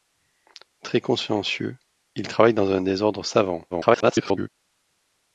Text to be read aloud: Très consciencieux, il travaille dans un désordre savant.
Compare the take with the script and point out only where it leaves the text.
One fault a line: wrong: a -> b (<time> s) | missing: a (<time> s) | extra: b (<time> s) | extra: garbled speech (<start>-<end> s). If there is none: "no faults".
extra: garbled speech (3.7-4.5 s)